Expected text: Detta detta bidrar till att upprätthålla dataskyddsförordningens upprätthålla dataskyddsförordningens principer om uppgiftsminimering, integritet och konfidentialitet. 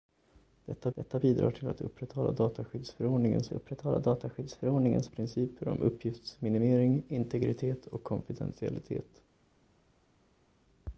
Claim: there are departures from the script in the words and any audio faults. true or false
false